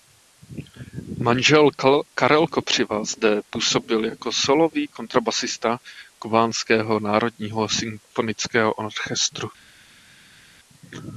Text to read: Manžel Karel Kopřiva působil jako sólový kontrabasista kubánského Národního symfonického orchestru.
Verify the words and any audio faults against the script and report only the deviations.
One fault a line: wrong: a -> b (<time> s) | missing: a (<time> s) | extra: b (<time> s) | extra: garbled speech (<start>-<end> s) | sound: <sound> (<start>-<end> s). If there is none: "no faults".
extra: zde (3.0 s)